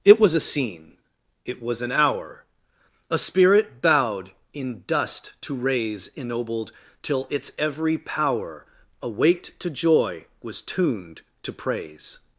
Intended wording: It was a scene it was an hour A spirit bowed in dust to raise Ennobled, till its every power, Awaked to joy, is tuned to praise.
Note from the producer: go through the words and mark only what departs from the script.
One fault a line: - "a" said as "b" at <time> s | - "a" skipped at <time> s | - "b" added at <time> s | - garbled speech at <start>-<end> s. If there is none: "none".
- "is" said as "was" at 10.4 s